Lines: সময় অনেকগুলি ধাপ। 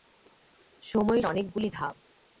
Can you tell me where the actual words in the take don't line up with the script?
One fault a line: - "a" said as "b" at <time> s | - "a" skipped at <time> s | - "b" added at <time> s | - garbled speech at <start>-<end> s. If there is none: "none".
none